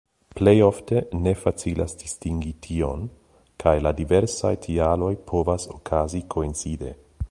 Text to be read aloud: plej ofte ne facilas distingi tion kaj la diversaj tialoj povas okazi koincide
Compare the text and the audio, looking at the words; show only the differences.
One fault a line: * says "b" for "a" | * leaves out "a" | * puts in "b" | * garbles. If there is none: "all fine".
all fine